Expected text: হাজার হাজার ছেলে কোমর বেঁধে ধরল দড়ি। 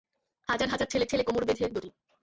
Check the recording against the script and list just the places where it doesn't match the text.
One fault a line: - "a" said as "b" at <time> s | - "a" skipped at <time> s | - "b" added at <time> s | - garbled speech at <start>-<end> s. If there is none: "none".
- "ছেলে" added at 1.1 s
- "ধরল" skipped at 1.7 s